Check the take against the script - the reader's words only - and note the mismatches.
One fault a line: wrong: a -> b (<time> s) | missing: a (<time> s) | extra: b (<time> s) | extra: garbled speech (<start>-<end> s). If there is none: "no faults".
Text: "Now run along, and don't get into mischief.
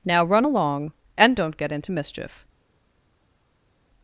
no faults